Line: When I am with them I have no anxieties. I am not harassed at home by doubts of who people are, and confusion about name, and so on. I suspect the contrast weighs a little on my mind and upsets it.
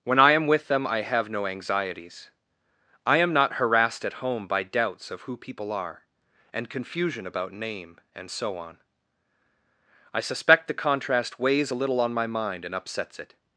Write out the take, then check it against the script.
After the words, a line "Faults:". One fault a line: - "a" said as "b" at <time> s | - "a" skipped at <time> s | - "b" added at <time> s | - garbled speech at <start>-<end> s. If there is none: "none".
When I am with them I have no anxieties. I am not harassed at home by doubts of who people are, and confusion about name, and so on. I suspect the contrast weighs a little on my mind and upsets it.
Faults:
none